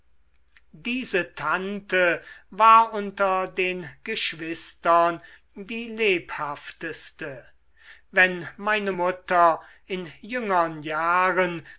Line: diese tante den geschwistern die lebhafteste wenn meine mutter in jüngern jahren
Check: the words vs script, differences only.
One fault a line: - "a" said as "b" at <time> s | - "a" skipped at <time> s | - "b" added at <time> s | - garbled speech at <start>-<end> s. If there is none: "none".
- "war unter" added at 2.5 s